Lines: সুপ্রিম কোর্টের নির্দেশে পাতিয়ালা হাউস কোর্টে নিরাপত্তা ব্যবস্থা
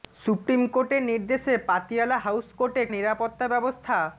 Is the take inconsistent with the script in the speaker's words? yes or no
no